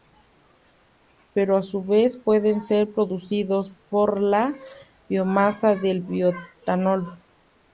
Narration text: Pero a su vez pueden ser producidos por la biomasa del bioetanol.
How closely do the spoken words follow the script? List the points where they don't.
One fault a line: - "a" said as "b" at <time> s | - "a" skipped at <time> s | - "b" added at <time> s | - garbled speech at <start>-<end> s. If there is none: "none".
none